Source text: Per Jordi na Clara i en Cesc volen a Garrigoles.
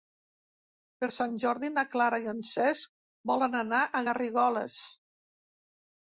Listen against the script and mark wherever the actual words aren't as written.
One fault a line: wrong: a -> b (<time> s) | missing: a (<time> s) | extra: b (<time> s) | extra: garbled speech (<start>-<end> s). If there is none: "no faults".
extra: Sant (1.1 s)
extra: anar (3.6 s)